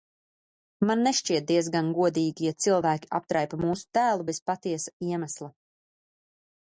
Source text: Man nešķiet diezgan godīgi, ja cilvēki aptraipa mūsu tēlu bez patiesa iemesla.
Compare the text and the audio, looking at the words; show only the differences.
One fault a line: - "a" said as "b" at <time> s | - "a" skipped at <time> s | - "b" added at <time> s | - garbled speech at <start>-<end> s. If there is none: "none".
none